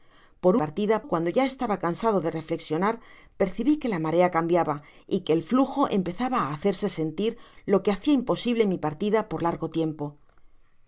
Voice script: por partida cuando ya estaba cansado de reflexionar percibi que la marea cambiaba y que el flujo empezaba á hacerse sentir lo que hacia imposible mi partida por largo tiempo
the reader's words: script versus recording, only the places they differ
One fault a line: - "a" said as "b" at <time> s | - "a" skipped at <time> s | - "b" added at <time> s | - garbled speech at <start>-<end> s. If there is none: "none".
none